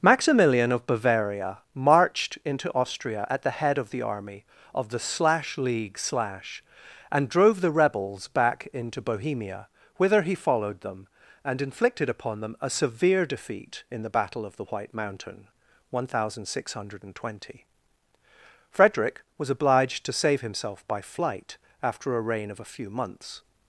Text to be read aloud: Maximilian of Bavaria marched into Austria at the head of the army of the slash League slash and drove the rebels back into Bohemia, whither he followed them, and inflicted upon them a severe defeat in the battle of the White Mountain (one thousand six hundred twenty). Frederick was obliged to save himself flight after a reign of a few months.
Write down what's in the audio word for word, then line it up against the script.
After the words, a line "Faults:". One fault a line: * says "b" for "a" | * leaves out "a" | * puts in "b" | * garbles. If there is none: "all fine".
Maximilian of Bavaria marched into Austria at the head of the army of the slash League slash and drove the rebels back into Bohemia, whither he followed them, and inflicted upon them a severe defeat in the battle of the White Mountain (one thousand six hundred twenty). Frederick was obliged to save himself by flight after a reign of a few months.
Faults:
* puts in "by"